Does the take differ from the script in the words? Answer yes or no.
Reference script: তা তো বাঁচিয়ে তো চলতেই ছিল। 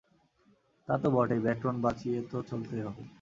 yes